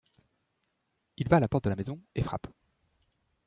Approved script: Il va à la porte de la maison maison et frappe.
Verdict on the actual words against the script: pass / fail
fail